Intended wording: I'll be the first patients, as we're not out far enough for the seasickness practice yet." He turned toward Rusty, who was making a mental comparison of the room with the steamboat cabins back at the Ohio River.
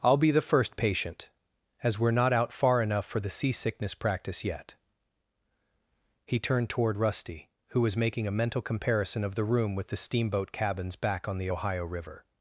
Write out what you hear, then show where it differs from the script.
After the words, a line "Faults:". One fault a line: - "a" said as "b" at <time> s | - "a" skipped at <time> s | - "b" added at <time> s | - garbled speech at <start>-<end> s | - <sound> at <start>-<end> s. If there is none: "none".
I'll be the first patient, as we're not out far enough for the seasickness practice yet." He turned toward Rusty, who was making a mental comparison of the room with the steamboat cabins back on the Ohio River.
Faults:
- "patients" said as "patient" at 0.8 s
- "at" said as "on" at 11.3 s